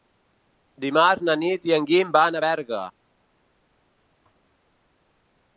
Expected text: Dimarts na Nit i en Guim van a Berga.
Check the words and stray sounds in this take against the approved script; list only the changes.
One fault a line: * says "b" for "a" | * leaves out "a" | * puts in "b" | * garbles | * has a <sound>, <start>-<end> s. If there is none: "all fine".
all fine